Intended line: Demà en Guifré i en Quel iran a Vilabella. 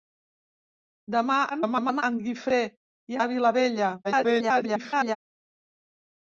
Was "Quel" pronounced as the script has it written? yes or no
no